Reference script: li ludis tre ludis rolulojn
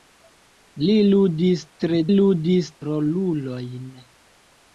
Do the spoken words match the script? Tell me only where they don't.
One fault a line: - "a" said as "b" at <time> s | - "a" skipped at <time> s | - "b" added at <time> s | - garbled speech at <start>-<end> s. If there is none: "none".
none